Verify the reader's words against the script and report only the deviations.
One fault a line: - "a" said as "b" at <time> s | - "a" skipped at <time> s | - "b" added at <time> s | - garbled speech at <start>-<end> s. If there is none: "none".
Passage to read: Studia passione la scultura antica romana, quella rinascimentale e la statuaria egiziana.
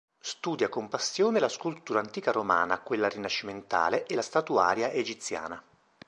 - "con" added at 0.7 s